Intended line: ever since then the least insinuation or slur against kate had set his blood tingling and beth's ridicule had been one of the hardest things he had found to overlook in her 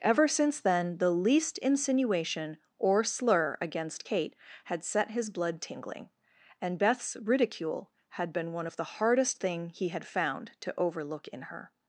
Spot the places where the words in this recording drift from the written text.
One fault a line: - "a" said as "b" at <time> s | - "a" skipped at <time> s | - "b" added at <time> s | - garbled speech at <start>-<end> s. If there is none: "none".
- "things" said as "thing" at 9.4 s